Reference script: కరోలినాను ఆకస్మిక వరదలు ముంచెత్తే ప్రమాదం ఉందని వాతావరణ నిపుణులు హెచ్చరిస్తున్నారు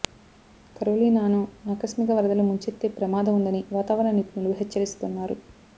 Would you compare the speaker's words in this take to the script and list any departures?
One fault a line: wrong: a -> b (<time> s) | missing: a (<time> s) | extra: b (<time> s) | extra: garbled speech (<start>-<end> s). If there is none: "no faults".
no faults